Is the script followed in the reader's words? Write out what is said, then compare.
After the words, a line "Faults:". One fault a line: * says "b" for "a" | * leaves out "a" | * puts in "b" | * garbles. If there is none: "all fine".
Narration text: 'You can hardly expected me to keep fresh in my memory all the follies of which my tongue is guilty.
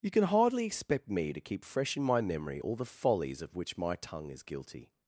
'You can hardly expect me to keep fresh in my memory all the follies of which my tongue is guilty.
Faults:
* says "expect" for "expected"